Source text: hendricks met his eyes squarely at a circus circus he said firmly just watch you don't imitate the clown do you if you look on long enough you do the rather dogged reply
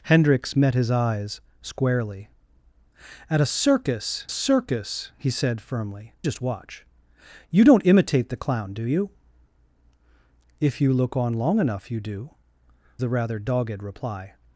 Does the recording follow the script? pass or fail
pass